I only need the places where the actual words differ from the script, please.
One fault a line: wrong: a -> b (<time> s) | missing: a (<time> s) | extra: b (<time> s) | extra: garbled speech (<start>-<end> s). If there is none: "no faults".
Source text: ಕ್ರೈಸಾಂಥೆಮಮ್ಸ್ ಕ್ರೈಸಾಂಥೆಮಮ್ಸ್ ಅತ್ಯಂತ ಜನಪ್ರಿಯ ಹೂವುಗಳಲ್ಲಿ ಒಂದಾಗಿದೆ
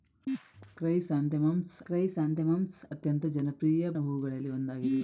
no faults